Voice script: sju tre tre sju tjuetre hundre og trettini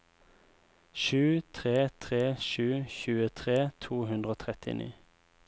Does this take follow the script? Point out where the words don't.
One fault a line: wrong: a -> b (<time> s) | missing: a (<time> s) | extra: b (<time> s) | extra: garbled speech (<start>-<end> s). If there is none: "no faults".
extra: to (3.9 s)